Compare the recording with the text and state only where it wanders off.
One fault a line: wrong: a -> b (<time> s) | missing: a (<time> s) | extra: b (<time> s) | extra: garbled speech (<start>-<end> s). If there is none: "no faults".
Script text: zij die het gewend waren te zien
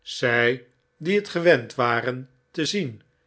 no faults